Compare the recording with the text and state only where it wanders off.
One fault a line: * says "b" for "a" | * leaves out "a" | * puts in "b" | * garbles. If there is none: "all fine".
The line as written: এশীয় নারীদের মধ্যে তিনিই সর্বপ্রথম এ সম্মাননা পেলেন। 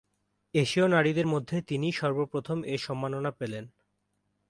all fine